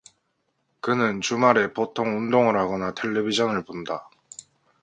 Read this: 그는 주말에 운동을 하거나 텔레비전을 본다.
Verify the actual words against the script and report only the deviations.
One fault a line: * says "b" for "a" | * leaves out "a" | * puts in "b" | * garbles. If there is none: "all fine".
* puts in "보통"